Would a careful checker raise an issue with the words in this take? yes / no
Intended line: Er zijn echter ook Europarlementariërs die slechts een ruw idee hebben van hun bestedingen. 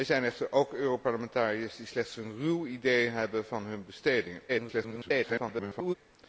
yes